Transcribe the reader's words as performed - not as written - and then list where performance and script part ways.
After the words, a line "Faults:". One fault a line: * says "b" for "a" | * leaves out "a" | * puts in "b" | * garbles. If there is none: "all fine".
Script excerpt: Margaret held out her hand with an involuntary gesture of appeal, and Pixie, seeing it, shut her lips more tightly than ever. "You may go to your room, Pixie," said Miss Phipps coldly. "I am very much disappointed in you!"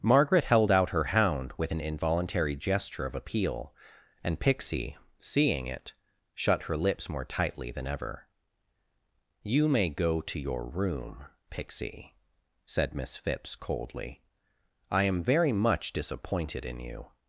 Margaret held out her hound with an involuntary gesture of appeal, and Pixie, seeing it, shut her lips more tightly than ever. "You may go to your room, Pixie," said Miss Phipps coldly. "I am very much disappointed in you!"
Faults:
* says "hound" for "hand"